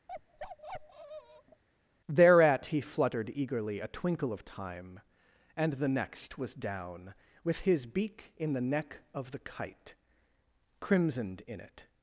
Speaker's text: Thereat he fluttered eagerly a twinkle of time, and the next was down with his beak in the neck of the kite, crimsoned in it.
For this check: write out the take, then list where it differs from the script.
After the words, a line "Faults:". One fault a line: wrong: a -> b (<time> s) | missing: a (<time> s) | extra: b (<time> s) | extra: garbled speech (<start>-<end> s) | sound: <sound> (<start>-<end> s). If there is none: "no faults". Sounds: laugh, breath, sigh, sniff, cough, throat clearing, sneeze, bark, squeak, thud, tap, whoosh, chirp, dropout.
Thereat he fluttered eagerly a twinkle of time, and the next was down with his beak in the neck of the kite, crimsoned in it.
Faults:
sound: bark (0.1-1.6 s)